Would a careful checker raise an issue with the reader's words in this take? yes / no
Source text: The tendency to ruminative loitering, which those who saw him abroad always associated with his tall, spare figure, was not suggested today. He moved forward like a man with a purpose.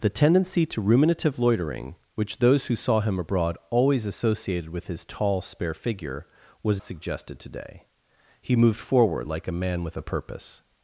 yes